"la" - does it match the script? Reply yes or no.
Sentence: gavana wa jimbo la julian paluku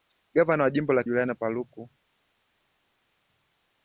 yes